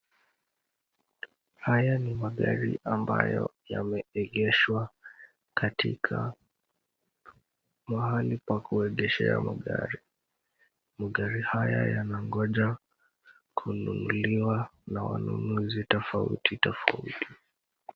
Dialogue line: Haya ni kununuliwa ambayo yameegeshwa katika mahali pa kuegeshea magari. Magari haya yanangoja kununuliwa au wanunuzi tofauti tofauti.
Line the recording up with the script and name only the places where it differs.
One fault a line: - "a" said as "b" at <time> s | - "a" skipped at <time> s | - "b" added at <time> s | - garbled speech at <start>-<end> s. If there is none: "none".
- "kununuliwa" said as "magari" at 2.1 s
- "au" said as "na" at 14.9 s